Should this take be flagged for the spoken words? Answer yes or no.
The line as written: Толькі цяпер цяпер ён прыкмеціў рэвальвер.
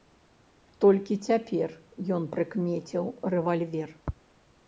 yes